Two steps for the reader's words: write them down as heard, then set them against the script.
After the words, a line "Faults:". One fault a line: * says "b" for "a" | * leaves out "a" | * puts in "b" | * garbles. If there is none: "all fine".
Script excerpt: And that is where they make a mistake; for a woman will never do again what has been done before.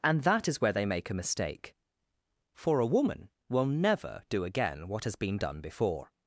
And that is where they make a mistake; for a woman will never do again what has been done before.
Faults:
all fine